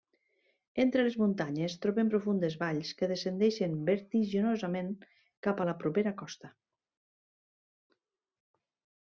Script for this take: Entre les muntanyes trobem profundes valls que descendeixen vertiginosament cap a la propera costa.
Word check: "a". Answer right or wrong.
right